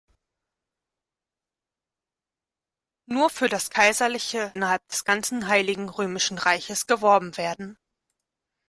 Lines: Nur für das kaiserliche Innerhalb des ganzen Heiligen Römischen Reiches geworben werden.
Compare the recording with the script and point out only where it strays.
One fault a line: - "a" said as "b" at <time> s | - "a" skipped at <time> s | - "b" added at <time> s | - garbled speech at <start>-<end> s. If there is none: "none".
none